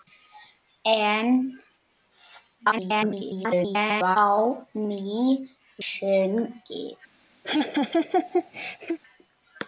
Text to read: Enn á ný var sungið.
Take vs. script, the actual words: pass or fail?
fail